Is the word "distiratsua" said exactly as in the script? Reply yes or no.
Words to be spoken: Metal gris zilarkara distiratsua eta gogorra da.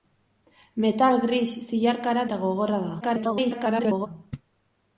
no